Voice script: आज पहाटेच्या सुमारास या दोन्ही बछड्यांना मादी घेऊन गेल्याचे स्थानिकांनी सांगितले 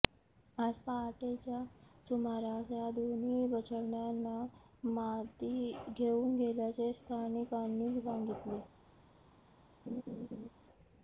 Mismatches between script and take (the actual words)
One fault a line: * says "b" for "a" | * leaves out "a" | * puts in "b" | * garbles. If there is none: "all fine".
all fine